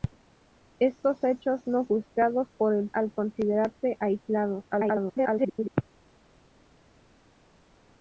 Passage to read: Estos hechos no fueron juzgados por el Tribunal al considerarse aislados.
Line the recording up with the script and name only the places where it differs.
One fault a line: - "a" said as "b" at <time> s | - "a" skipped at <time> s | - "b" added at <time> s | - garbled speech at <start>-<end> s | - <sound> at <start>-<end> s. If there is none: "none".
- "fueron" skipped at 1.9 s
- "Tribunal" skipped at 2.9 s
- garbled speech at 4.7-5.7 s